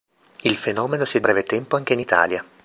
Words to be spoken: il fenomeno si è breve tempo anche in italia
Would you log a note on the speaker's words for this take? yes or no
no